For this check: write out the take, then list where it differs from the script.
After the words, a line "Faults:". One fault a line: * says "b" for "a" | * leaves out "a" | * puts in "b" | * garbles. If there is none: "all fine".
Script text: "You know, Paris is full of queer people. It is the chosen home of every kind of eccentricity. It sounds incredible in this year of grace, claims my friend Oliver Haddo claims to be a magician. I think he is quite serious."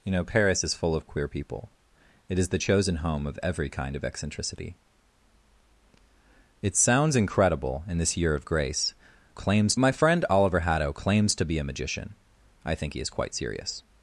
"You know, Paris is full of queer people. It is the chosen home of every kind of eccentricity. It sounds incredible in this year of grace, claims my friend Oliver Haddo claims to be a magician. I think he is quite serious."
Faults:
all fine